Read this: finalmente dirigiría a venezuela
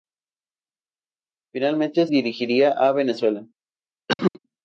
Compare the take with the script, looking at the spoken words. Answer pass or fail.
pass